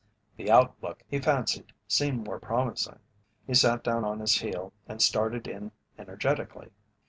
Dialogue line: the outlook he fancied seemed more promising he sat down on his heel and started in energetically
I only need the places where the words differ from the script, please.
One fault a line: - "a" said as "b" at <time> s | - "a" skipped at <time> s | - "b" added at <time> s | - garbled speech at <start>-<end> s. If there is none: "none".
none